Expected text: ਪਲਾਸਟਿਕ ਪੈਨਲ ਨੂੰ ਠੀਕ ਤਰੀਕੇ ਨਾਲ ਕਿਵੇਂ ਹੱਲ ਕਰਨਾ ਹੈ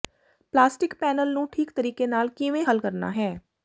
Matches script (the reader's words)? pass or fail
pass